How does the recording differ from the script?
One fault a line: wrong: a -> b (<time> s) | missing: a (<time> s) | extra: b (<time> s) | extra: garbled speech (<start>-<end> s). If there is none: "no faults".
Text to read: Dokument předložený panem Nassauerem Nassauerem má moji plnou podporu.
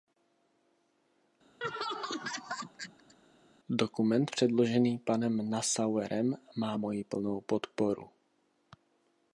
missing: Nassauerem (6.4 s)